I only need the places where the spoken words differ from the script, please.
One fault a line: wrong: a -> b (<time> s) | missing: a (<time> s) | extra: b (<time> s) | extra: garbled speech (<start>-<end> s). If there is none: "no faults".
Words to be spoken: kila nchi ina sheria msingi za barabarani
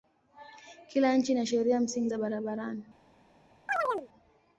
no faults